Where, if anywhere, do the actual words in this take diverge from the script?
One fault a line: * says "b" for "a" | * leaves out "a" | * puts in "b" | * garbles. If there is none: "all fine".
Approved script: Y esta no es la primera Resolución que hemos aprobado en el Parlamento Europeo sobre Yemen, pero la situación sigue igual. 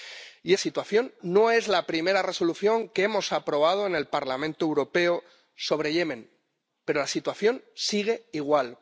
* says "situación" for "esta"